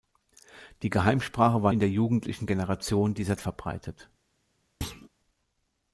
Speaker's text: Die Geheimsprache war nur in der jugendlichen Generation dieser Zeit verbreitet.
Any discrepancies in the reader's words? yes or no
yes